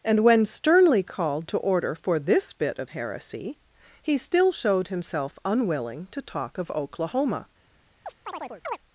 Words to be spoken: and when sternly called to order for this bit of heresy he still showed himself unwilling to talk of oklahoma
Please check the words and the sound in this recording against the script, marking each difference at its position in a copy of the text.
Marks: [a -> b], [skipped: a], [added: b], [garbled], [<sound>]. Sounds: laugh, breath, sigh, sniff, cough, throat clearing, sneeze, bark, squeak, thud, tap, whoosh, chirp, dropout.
and when sternly called to order for this bit of heresy he still showed himself unwilling to talk of oklahoma [chirp]